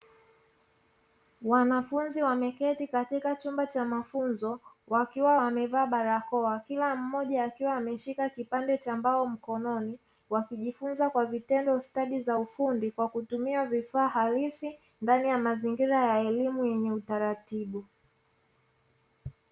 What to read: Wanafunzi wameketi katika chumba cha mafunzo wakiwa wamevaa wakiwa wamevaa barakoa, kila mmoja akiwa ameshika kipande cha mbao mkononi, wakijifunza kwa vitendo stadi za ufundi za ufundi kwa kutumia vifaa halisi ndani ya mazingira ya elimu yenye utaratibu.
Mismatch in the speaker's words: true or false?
true